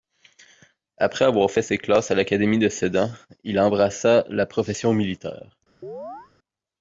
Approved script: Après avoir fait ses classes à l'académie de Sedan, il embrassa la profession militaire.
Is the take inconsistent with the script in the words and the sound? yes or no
yes